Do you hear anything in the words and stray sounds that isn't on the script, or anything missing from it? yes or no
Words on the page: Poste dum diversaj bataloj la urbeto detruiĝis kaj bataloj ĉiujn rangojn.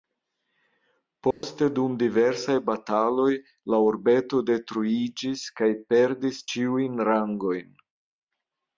yes